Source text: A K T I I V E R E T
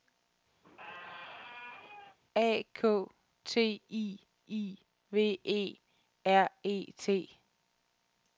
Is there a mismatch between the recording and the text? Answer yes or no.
no